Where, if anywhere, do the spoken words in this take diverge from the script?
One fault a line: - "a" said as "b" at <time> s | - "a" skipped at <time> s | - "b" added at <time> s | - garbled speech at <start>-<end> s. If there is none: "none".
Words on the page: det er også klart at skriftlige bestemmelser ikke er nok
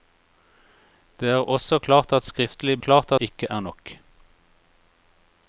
- "bestemmelser" said as "klart" at 2.8 s